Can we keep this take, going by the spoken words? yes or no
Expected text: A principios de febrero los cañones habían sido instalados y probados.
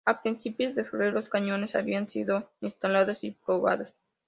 yes